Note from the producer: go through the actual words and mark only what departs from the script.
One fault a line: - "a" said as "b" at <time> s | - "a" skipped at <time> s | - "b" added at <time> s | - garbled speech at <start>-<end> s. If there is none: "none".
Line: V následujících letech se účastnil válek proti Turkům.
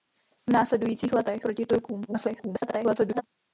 - "se účastnil válek" skipped at 1.4 s
- garbled speech at 2.1-3.2 s